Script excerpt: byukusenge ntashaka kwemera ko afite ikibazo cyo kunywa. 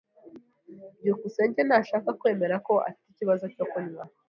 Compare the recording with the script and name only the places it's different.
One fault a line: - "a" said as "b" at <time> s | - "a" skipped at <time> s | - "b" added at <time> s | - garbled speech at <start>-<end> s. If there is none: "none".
none